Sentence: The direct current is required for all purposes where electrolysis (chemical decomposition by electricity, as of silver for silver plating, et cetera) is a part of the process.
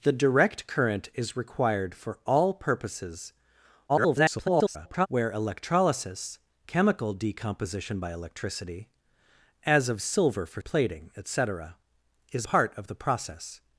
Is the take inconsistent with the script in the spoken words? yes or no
yes